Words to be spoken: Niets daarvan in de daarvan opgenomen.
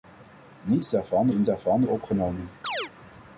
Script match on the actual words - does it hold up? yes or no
yes